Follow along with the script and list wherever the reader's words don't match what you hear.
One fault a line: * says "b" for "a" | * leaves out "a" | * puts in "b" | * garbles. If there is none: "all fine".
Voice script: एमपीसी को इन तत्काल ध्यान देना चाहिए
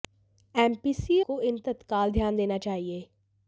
all fine